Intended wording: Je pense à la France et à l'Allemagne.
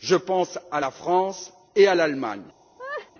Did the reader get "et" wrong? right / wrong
right